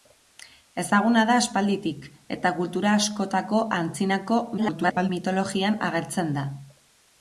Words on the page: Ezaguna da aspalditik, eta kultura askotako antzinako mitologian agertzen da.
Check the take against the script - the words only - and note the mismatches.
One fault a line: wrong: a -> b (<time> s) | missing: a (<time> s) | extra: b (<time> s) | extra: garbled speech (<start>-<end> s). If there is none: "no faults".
extra: garbled speech (4.6-5.1 s)